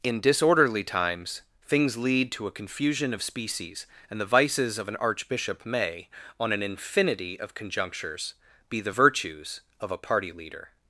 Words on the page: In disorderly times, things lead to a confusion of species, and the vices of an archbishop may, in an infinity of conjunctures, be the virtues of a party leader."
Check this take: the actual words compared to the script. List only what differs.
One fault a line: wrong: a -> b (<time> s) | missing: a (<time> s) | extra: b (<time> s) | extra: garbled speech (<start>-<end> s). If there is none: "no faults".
wrong: in -> on (6.4 s)